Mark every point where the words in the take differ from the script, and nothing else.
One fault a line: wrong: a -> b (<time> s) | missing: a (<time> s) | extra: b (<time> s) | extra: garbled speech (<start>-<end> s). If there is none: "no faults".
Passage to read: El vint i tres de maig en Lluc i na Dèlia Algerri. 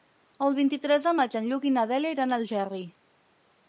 extra: iran a (2.2 s)